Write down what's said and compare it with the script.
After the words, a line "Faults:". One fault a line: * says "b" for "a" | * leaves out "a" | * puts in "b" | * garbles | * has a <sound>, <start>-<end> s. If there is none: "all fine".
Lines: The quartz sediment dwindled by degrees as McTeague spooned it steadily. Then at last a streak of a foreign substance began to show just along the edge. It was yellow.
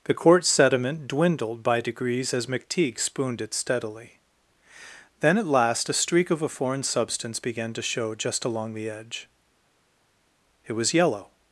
The quartz sediment dwindled by degrees as McTeague spooned it steadily. Then at last a streak of a foreign substance began to show just along the edge. It was yellow.
Faults:
all fine